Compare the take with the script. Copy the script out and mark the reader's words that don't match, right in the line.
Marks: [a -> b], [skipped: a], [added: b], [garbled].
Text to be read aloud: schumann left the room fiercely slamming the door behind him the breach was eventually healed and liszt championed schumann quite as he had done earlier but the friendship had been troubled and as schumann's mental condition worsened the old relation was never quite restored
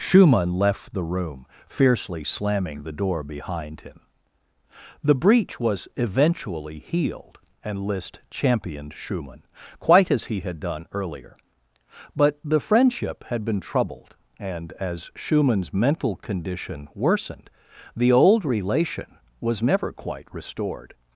schumann left the room fiercely slamming the door behind him the breach was eventually healed and liszt championed schumann quite as he had done earlier but the friendship had been troubled and as schumann's mental condition worsened the old relation was never quite restored